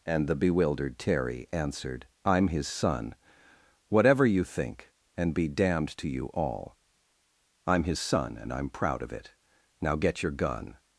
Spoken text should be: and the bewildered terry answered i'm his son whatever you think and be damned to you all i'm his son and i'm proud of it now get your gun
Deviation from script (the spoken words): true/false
false